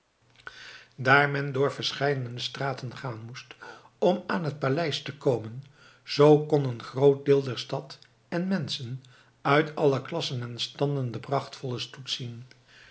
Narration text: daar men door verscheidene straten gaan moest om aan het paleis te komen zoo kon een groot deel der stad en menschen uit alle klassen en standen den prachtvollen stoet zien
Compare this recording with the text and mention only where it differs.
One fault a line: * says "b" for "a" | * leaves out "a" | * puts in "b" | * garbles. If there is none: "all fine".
all fine